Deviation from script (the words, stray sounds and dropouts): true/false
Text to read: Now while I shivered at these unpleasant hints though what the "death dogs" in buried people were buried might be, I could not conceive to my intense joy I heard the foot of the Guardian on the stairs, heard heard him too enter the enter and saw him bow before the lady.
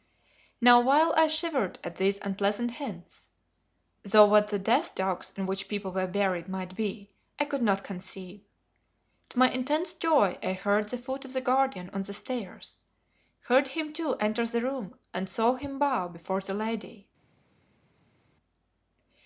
true